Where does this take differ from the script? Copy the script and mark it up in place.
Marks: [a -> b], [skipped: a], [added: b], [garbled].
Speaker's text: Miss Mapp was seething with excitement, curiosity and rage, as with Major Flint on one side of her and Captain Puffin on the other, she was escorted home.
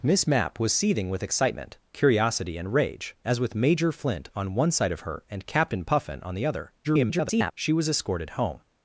Miss Mapp was seething with excitement, curiosity and rage, as with Major Flint on one side of her and Captain Puffin on the other, [garbled] she was escorted home.